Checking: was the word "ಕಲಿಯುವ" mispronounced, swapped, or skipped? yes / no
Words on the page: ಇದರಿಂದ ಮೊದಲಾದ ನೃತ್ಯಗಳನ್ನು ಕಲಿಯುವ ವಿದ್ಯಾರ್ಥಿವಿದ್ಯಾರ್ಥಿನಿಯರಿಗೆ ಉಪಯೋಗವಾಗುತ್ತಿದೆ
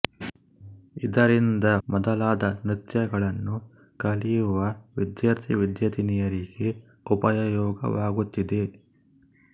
no